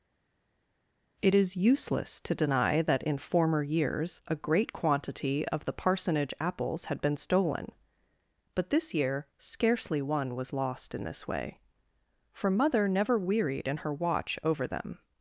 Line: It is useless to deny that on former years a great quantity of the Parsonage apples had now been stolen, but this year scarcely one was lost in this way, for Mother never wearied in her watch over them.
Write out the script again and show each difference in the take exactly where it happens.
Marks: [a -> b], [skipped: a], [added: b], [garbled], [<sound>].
It is useless to deny that [on -> in] former years a great quantity of the Parsonage apples had [skipped: now] been stolen, but this year scarcely one was lost in this way, for Mother never wearied in her watch over them.